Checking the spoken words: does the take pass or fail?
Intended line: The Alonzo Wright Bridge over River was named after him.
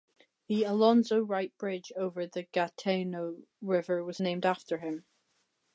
fail